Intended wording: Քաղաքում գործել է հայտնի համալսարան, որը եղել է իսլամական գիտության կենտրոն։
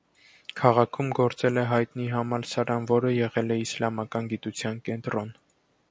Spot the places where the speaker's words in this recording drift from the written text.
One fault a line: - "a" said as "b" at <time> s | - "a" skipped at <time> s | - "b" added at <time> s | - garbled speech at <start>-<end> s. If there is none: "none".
none